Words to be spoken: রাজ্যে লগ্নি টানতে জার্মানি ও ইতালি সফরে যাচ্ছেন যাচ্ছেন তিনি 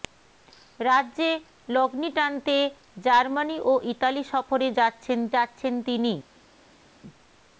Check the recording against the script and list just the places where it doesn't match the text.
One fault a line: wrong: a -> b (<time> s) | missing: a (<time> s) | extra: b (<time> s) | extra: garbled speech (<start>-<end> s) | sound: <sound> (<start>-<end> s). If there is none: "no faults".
no faults